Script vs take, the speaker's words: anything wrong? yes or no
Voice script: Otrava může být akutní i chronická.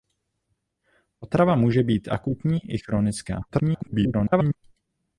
yes